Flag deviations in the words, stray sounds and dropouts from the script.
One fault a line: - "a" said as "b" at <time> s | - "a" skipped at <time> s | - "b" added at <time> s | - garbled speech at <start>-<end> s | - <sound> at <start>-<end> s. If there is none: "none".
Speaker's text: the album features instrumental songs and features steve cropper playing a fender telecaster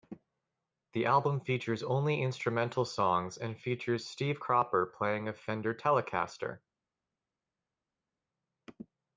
- "only" added at 1.8 s